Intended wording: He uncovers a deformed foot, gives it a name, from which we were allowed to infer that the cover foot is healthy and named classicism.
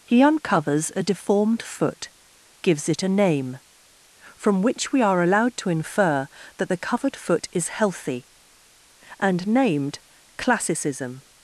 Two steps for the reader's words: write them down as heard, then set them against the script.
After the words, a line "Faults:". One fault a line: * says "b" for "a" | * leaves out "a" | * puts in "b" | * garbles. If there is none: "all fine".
He uncovers a deformed foot, gives it a name, from which we are allowed to infer that the covered foot is healthy and named classicism.
Faults:
* says "are" for "were"
* says "covered" for "cover"